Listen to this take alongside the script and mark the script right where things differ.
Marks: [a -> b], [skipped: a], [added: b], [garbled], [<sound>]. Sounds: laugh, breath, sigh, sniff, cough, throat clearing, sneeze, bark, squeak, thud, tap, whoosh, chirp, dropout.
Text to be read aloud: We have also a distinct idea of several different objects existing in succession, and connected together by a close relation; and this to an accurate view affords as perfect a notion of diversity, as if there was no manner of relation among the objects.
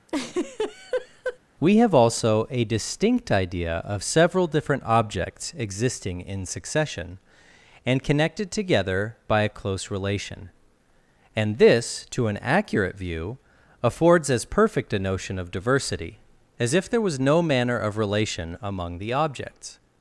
[laugh] We have also a distinct idea of several different objects existing in succession, and connected together by a close relation; and this to an accurate view affords as perfect a notion of diversity, as if there was no manner of relation among the objects.